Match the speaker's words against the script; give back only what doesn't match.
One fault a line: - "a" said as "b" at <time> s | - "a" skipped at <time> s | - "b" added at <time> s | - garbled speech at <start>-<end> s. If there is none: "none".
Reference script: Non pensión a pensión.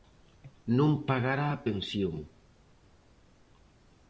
- "pensión" said as "pagará" at 1.1 s